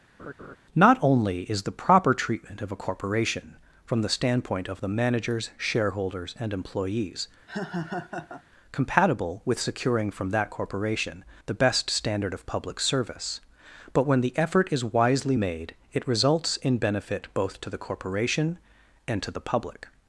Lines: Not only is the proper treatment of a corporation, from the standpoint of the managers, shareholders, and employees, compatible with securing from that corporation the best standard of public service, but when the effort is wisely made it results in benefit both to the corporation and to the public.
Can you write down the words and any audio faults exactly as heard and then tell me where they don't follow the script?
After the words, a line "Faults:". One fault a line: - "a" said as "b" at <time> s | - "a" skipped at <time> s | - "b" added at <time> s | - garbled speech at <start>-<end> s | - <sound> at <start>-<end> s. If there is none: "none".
Not only is the proper treatment of a corporation, from the standpoint of the managers, shareholders, and employees, compatible with securing from that corporation the best standard of public service, but when the effort is wisely made it results in benefit both to the corporation and to the public.
Faults:
- laugh at 0.2-0.6 s
- laugh at 7.5-8.4 s